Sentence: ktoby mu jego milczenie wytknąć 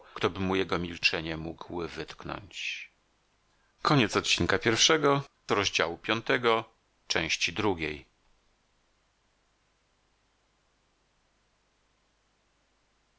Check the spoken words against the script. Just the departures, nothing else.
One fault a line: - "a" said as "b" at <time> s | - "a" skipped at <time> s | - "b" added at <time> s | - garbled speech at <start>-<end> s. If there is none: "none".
- "mógł" added at 1.4 s